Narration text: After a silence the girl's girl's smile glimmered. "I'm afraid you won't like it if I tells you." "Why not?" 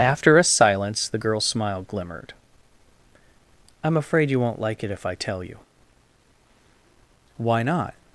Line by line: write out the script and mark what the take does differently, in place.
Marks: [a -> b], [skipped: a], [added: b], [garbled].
After a silence the girl's [skipped: girl's] smile glimmered. "I'm afraid you won't like it if I [tells -> tell] you." "Why not?"